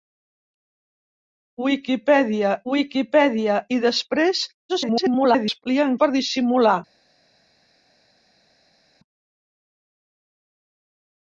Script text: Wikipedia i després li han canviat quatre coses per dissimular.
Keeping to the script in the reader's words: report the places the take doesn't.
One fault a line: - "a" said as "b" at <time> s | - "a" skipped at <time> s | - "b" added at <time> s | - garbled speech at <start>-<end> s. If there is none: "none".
- "wikipedia" added at 2.7 s
- garbled speech at 4.7-5.6 s
- "canviat quatre coses" skipped at 6.0 s